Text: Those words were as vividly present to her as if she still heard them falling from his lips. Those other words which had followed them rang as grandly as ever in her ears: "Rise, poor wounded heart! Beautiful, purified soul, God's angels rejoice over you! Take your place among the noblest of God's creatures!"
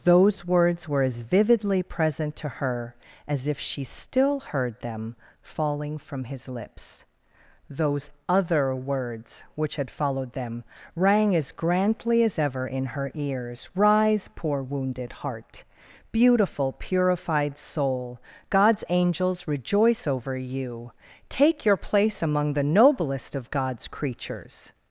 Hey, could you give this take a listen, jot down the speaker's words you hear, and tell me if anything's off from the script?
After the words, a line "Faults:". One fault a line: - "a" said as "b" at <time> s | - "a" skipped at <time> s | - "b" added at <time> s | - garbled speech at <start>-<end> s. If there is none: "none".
Those words were as vividly present to her as if she still heard them falling from his lips. Those other words which had followed them rang as grandly as ever in her ears: "Rise, poor wounded heart! Beautiful, purified soul, God's angels rejoice over you! Take your place among the noblest of God's creatures!"
Faults:
none